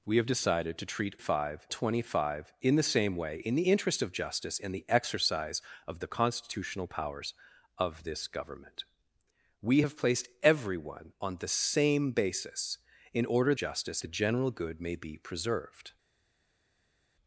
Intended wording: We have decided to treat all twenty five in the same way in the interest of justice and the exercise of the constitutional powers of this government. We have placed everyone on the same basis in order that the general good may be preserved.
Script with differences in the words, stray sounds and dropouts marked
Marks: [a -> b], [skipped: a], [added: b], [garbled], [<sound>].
We have decided to treat [all -> five] twenty five in the same way in the interest of justice and the exercise of the constitutional powers of this government. We have placed everyone on the same basis in order [that -> justice] the general good may be preserved.